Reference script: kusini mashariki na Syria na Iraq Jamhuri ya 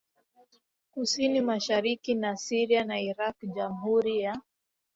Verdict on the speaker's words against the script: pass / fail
pass